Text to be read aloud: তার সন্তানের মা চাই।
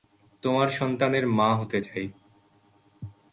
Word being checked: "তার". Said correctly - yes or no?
no